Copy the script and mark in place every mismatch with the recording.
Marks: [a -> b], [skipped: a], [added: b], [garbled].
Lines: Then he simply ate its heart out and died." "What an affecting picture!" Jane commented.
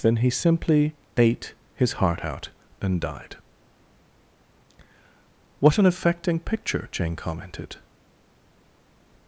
Then he simply ate [its -> his] heart out and died." "What an affecting picture!" Jane commented.